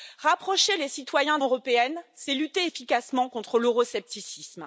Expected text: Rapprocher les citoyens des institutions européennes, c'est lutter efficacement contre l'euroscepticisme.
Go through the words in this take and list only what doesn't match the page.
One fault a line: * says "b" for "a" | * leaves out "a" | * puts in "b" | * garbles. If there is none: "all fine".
* leaves out "des institutions"